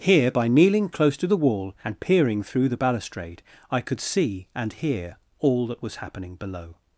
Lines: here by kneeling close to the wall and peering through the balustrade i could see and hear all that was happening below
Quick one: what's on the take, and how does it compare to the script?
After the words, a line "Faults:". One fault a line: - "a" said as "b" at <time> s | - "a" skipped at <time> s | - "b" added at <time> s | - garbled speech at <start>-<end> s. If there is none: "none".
here by kneeling close to the wall and peering through the balustrade i could see and hear all that was happening below
Faults:
none